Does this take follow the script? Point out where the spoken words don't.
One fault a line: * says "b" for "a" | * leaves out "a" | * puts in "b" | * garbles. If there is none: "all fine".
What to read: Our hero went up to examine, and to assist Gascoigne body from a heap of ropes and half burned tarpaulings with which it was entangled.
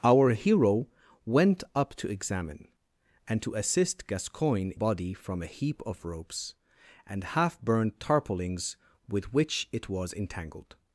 all fine